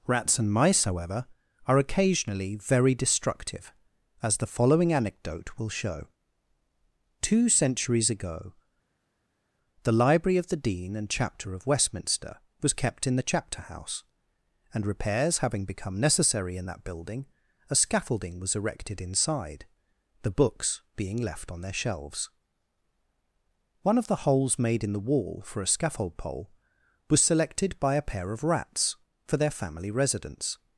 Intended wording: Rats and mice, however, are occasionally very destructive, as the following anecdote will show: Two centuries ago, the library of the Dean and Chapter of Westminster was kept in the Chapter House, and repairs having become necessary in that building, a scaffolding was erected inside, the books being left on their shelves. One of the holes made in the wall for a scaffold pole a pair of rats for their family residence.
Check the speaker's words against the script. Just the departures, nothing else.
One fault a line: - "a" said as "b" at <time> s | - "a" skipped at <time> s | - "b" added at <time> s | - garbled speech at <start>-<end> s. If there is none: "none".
- "was selected by" added at 27.1 s